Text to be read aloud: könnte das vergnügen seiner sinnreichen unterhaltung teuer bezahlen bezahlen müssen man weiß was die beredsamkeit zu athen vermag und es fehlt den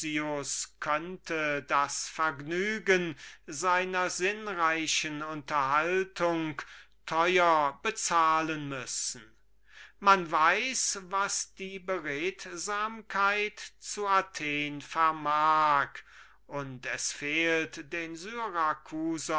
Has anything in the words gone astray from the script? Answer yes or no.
yes